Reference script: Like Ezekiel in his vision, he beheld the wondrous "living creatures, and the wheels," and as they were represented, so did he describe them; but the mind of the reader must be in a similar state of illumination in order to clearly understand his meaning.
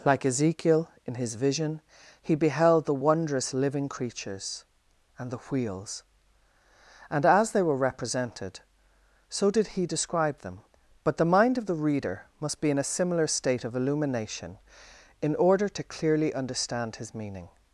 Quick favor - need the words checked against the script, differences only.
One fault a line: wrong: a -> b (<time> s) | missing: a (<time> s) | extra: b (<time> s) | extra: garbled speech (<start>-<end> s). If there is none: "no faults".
no faults